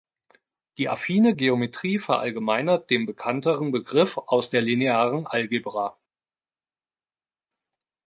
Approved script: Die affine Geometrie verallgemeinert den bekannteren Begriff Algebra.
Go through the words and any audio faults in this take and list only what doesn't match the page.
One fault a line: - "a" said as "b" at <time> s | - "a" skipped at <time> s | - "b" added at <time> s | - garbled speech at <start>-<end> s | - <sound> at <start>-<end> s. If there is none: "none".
- "aus der Linearen" added at 4.2 s